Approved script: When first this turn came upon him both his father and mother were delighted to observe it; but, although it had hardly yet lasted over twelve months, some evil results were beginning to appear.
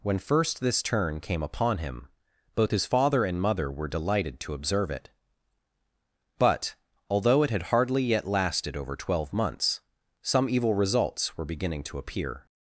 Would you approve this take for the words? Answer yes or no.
yes